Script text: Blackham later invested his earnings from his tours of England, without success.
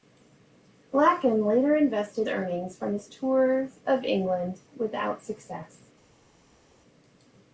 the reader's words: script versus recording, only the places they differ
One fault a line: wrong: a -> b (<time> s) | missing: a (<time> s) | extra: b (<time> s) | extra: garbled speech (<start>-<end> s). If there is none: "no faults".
missing: his (2.3 s)